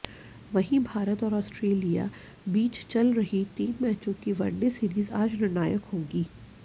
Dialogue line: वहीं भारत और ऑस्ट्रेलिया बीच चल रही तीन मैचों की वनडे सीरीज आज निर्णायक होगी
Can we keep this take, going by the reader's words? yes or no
yes